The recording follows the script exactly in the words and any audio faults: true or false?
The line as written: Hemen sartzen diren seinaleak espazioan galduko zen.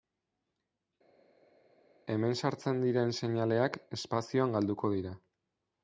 false